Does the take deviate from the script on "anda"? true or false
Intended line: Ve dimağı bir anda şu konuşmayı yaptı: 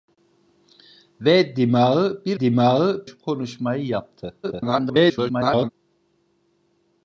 true